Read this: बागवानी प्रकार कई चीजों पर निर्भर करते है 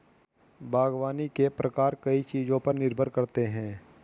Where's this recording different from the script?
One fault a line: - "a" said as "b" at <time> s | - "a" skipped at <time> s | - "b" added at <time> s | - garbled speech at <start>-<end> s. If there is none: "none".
- "के" added at 1.3 s